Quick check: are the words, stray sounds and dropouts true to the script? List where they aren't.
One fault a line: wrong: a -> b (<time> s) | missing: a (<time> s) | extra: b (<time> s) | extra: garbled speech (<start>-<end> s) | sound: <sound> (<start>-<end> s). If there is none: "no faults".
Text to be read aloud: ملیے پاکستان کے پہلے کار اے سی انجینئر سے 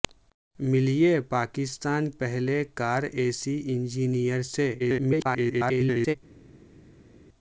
missing: کے (2.1 s)
extra: garbled speech (4.8-6.2 s)